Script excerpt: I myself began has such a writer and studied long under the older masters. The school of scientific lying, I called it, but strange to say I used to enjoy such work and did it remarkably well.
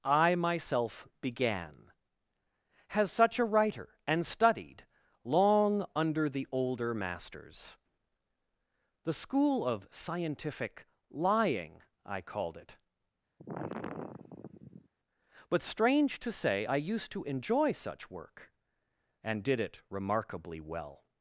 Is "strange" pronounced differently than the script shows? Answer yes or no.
no